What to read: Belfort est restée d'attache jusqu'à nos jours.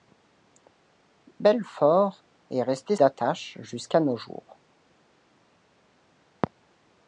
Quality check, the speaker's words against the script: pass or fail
pass